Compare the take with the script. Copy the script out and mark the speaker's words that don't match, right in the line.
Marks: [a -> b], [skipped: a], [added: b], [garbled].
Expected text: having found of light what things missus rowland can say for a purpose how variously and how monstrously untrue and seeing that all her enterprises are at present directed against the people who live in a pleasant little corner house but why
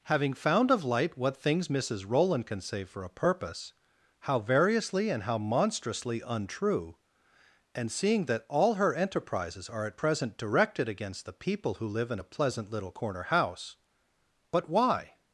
having found of light what things missus rowland can say for a purpose how variously and how monstrously untrue and seeing that all her enterprises are at present directed against the people who live in a pleasant little corner house but why